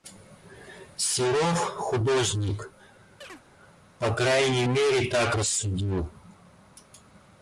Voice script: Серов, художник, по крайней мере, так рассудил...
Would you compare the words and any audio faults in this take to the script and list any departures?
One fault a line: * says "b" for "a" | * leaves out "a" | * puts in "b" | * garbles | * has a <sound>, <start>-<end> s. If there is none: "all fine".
* has a chirp, 3.2-3.4 s